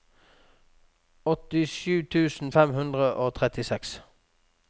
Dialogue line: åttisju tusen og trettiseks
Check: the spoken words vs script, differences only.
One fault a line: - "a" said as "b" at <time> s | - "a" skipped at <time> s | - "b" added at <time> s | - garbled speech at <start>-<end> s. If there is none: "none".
- "fem hundre" added at 2.5 s